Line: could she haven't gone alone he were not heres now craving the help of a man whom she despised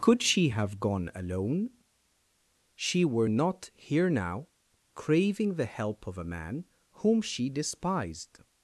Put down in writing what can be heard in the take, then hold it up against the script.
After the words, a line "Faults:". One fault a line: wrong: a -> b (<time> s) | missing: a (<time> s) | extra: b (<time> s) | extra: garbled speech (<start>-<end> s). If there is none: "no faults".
could she have gone alone she were not here now craving the help of a man whom she despised
Faults:
wrong: haven't -> have (0.5 s)
wrong: he -> she (2.7 s)
wrong: heres -> here (3.7 s)